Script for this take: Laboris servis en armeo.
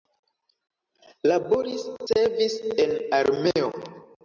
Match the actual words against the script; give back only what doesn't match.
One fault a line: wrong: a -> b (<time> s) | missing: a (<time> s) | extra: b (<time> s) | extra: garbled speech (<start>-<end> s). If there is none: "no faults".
no faults